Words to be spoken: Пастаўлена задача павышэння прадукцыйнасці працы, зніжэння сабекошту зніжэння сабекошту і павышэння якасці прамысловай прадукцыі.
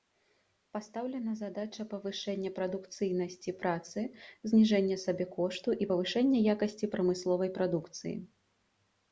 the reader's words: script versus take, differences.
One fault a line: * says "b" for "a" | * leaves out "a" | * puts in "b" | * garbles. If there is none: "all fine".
* leaves out "зніжэння сабекошту"